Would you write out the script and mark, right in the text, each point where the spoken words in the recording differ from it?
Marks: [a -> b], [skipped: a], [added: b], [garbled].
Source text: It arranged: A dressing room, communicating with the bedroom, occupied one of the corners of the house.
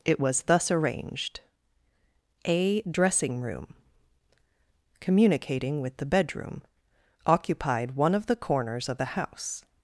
It [added: was thus] arranged: A dressing room, communicating with the bedroom, occupied one of the corners of the house.